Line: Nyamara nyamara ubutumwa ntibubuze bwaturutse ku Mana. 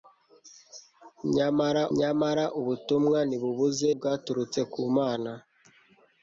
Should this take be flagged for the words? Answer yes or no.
no